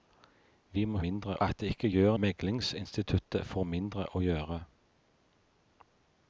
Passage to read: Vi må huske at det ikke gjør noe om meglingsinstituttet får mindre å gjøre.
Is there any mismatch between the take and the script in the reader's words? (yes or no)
yes